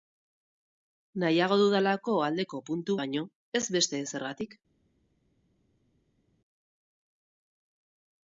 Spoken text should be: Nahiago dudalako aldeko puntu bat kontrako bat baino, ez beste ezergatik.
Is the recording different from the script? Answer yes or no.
yes